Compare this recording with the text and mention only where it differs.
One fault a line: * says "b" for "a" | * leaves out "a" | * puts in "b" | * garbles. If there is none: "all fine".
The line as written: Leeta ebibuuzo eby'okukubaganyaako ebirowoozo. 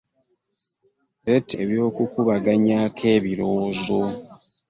* leaves out "ebibuuzo"